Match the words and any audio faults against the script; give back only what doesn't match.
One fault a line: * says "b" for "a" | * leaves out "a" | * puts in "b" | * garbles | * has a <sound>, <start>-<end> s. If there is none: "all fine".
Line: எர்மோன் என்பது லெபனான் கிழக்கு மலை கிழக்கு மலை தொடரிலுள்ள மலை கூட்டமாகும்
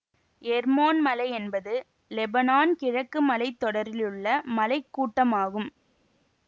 * puts in "மலை"
* leaves out "கிழக்கு மலை"